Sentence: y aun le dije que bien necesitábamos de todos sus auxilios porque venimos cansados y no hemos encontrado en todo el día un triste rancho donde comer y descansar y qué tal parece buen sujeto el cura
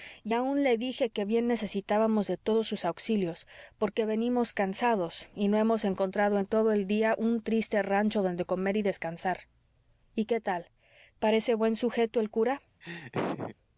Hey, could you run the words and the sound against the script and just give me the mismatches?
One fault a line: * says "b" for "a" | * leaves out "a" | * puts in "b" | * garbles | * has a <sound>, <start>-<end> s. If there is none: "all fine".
* has a laugh, 12.8-13.6 s